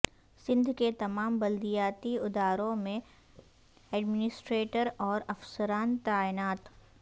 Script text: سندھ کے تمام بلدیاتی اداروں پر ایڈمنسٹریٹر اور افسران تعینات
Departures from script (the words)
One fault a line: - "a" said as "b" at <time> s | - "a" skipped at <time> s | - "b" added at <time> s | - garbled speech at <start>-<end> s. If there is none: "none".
- "پر" said as "میں" at 2.8 s